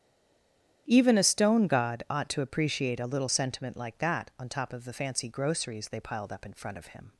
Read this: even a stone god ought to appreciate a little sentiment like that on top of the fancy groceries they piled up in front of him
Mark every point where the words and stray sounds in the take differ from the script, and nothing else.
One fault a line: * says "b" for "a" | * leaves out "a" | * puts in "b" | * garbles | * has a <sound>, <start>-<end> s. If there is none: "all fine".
all fine